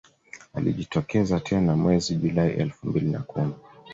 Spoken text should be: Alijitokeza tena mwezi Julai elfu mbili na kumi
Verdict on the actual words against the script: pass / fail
pass